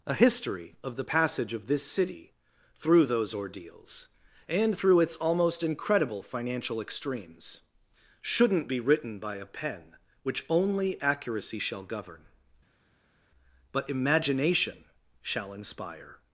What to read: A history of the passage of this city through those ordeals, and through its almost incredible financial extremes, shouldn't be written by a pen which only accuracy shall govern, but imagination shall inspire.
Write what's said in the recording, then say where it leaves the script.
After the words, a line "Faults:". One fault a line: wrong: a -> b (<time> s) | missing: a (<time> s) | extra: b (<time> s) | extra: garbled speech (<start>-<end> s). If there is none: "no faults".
A history of the passage of this city through those ordeals, and through its almost incredible financial extremes, shouldn't be written by a pen which only accuracy shall govern, but imagination shall inspire.
Faults:
no faults